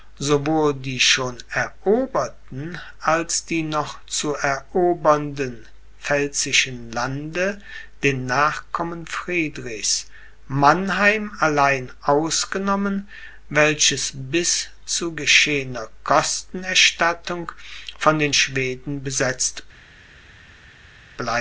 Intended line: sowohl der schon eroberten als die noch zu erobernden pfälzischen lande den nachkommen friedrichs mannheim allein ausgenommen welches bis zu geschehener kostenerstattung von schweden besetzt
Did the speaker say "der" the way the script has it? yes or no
no